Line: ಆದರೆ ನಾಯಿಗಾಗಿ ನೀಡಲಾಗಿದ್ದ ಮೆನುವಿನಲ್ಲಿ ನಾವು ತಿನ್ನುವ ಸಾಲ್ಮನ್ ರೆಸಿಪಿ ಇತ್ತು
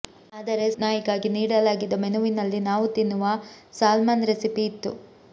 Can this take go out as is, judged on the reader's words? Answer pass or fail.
pass